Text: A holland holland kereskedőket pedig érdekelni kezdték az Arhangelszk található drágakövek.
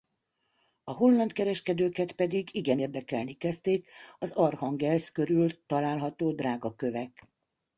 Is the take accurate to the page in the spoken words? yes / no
no